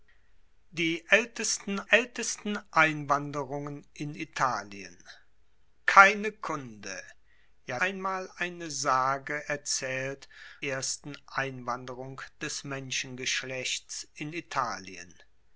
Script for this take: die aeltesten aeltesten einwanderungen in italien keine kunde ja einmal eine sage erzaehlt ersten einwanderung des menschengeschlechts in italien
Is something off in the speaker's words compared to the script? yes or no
no